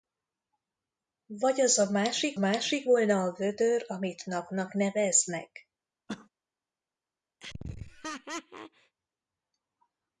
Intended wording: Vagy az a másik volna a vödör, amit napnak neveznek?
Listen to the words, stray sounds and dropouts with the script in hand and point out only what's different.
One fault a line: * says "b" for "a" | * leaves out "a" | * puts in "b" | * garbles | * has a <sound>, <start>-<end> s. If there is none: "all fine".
* puts in "másik"
* has a cough, 6.1-6.3 s
* has a laugh, 7.4-9.0 s